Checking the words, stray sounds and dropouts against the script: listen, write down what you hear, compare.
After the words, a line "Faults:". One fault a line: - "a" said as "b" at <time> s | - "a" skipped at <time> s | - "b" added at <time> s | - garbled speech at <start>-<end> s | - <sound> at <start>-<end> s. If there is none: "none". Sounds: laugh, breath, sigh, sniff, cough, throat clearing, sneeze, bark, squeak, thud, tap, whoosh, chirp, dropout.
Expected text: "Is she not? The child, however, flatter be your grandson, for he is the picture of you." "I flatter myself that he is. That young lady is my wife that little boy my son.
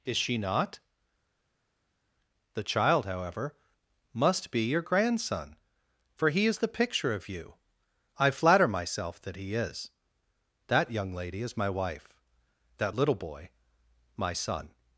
"Is she not? The child, however, must be your grandson, for he is the picture of you." "I flatter myself that he is. That young lady is my wife that little boy my son.
Faults:
- "flatter" said as "must" at 4.1 s